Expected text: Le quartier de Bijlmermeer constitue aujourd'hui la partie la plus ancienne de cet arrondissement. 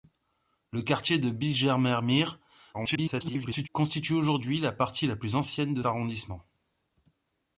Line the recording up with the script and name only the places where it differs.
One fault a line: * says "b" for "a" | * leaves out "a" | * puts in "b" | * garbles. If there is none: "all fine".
* garbles
* leaves out "cet"